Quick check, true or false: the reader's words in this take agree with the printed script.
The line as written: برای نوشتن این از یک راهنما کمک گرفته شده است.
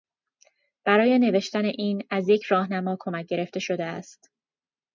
true